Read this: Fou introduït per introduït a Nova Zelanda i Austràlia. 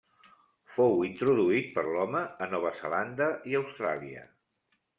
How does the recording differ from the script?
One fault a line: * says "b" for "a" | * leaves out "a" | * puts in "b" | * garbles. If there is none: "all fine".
* says "l'home" for "introduït"